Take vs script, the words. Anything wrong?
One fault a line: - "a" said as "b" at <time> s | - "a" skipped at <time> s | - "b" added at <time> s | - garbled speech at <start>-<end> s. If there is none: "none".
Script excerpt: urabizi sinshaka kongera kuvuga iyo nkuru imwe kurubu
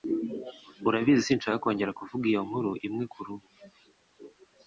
none